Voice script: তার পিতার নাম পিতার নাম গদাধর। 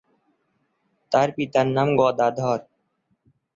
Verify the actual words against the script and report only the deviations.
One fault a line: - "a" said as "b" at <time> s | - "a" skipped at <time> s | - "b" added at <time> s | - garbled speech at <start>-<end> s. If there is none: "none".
- "পিতার নাম" skipped at 1.9 s